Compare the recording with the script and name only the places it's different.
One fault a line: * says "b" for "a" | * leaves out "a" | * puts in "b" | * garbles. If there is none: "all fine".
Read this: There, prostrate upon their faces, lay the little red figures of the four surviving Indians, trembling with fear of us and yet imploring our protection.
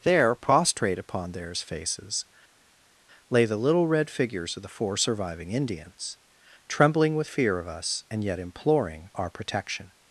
* says "theirs" for "their"